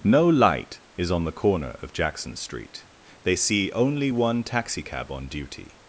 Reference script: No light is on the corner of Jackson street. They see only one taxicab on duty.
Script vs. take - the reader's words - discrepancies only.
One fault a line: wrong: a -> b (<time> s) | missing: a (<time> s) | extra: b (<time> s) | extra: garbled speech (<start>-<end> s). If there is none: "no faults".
no faults